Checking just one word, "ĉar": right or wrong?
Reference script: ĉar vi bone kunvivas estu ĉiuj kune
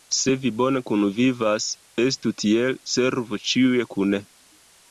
wrong